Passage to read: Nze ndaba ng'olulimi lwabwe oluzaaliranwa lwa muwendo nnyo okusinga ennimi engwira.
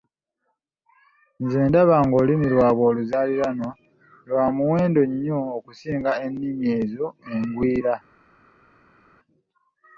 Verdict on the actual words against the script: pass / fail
fail